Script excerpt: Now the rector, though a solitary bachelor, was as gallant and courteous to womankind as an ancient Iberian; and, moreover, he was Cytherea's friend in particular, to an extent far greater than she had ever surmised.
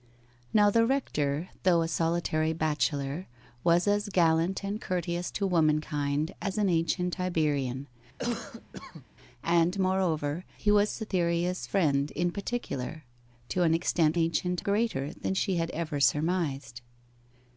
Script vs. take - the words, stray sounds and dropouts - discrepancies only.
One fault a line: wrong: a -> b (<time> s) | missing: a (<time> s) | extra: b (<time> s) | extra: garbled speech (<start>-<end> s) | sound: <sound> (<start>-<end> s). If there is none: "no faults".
sound: cough (8.2-9.1 s)
wrong: far -> ancient (14.1 s)